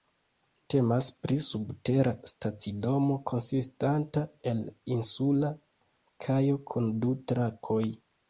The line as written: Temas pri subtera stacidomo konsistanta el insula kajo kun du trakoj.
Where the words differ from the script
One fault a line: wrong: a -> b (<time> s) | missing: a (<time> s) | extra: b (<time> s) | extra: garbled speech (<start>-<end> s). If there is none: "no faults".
no faults